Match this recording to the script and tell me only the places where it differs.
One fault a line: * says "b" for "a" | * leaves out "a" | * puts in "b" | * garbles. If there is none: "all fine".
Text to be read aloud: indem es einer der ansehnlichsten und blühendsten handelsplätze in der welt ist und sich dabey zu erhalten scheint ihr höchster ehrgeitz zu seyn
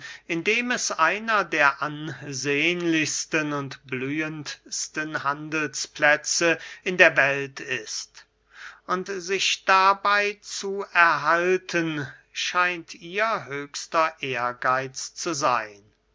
all fine